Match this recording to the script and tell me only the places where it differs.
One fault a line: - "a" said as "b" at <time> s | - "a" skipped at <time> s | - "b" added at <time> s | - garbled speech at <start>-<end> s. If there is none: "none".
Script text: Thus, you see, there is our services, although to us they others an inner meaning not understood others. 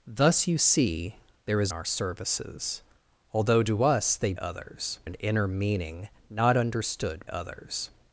none